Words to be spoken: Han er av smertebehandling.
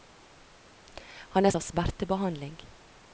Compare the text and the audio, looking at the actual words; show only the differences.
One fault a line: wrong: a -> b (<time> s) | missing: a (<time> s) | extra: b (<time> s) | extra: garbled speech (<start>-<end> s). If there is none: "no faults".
no faults